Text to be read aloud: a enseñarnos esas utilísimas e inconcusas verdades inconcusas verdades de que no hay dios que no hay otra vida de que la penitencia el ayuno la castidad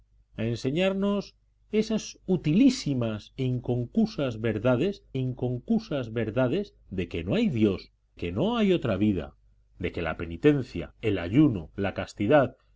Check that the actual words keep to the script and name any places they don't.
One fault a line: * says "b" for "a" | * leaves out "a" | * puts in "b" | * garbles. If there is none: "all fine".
all fine